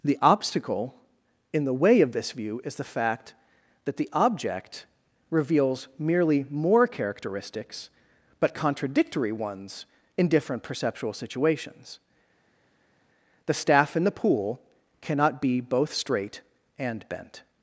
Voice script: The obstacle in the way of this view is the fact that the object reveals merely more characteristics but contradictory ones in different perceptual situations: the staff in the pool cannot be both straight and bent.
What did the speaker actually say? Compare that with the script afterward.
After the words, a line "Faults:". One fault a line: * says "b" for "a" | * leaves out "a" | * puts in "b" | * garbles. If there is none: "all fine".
The obstacle in the way of this view is the fact that the object reveals merely more characteristics but contradictory ones in different perceptual situations: the staff in the pool cannot be both straight and bent.
Faults:
all fine